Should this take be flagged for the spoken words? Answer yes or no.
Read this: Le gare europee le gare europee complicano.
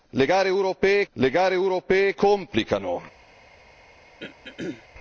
no